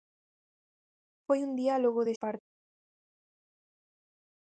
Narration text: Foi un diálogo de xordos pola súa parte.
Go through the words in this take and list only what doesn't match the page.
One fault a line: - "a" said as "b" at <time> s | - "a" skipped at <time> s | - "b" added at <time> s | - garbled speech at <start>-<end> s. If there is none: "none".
- "xordos pola súa" skipped at 2.1 s